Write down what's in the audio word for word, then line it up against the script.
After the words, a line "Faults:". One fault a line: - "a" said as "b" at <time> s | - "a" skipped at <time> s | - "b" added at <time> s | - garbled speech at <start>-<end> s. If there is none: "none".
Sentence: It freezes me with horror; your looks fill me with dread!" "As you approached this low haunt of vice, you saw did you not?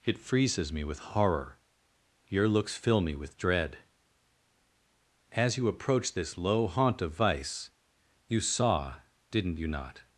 It freezes me with horror; your looks fill me with dread!" "As you approached this low haunt of vice, you saw didn't you not?
Faults:
- "did" said as "didn't" at 9.3 s